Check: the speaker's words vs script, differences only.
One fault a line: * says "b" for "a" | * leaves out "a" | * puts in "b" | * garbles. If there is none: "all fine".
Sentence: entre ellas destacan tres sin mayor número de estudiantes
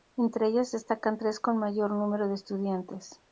* says "con" for "sin"